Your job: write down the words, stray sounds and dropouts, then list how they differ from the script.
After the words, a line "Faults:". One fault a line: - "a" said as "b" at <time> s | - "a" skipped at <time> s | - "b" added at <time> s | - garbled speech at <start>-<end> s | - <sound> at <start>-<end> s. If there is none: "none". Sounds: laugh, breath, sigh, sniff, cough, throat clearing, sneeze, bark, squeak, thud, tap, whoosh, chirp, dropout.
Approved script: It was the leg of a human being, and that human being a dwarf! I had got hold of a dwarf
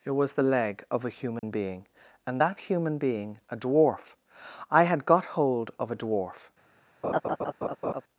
It was the leg of a human being, and that human being a dwarf! I had got hold of a dwarf
Faults:
- dropout at 1.4-1.4 s
- laugh at 7.0-8.0 s